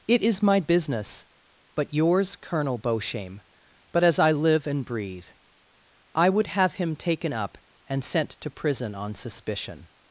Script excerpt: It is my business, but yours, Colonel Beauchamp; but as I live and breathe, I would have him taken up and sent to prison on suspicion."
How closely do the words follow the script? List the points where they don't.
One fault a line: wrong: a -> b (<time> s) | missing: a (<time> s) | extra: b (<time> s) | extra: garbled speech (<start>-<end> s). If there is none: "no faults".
no faults